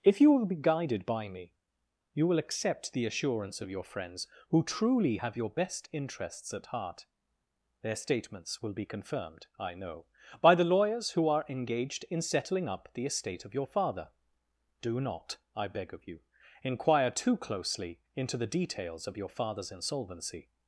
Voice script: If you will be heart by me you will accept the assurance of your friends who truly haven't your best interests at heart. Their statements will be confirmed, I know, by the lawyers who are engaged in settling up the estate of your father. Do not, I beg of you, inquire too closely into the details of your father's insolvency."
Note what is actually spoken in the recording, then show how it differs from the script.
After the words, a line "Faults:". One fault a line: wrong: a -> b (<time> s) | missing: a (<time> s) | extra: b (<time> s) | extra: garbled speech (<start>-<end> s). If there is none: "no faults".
If you will be guided by me you will accept the assurance of your friends who truly have your best interests at heart. Their statements will be confirmed, I know, by the lawyers who are engaged in settling up the estate of your father. Do not, I beg of you, inquire too closely into the details of your father's insolvency."
Faults:
wrong: heart -> guided (0.6 s)
wrong: haven't -> have (5.1 s)